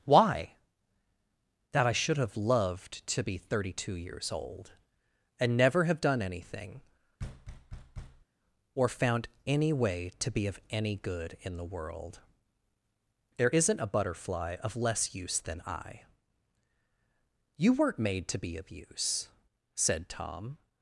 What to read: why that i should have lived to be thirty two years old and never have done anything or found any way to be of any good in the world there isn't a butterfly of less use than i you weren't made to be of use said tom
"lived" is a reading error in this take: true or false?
true